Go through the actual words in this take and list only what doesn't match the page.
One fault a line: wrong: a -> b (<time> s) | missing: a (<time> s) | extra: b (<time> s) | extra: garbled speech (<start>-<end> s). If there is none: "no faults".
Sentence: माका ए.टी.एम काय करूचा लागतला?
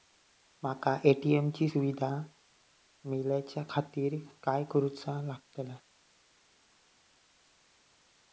extra: ची सुविधा मेलाच्याखातिर (1.5 s)